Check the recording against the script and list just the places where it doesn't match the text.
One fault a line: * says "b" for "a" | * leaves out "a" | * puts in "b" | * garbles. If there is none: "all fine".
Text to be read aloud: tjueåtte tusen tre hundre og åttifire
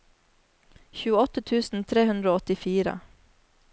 all fine